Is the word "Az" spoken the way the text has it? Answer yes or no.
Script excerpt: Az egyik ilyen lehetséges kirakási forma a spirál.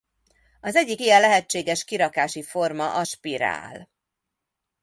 yes